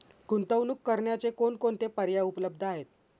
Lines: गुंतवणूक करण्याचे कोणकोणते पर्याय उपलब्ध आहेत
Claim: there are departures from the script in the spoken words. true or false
false